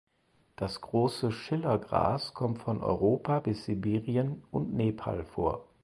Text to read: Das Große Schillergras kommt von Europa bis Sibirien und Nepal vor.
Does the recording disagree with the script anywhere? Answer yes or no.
no